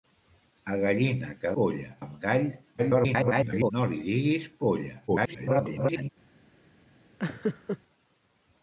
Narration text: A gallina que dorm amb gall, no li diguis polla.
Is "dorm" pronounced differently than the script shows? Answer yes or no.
yes